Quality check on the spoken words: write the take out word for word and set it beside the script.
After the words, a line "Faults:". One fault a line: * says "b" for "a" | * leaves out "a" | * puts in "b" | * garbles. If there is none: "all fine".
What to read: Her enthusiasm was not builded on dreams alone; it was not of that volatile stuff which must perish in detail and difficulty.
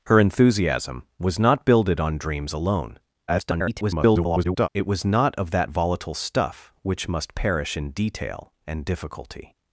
Her enthusiasm was not builded on dreams alone; [garbled] it was not of that volatile stuff which must perish in detail and difficulty.
Faults:
* garbles